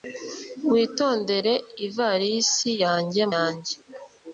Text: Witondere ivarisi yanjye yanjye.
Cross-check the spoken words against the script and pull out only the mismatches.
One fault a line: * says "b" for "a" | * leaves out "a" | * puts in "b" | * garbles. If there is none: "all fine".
all fine